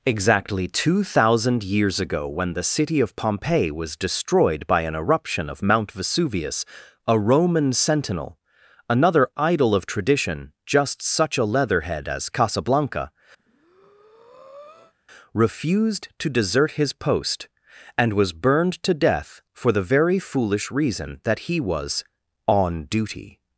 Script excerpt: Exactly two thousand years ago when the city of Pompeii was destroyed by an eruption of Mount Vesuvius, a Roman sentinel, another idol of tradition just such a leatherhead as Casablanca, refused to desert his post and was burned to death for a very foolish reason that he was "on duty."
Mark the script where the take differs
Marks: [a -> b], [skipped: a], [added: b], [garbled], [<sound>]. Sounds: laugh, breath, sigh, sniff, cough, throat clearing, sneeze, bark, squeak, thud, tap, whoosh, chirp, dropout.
Exactly two thousand years ago when the city of Pompeii was destroyed by an eruption of Mount Vesuvius, a Roman sentinel, another idol of tradition just such a leatherhead as Casablanca, [breath] refused to desert his post and was burned to death for [a -> the] very foolish reason that he was "on duty."